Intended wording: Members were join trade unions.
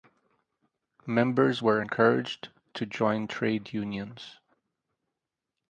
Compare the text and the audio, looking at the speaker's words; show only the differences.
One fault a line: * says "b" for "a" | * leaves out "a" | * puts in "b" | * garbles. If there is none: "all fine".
* puts in "encouraged to"